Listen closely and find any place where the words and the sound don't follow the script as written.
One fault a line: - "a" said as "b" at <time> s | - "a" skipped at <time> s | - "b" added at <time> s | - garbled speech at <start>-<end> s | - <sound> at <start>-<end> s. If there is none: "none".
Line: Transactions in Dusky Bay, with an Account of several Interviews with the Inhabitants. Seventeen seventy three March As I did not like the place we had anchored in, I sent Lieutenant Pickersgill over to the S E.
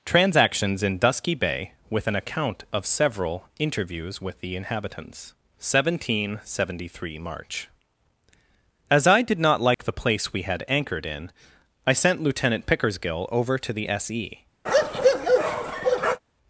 - dropout at 9.7-9.8 s
- bark at 14.7-16.2 s